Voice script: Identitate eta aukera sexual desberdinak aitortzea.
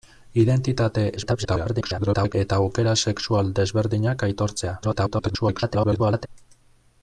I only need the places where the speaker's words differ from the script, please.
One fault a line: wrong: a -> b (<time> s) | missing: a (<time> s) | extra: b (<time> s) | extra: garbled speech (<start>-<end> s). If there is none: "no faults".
extra: garbled speech (1.2-2.3 s)
extra: garbled speech (4.8-6.3 s)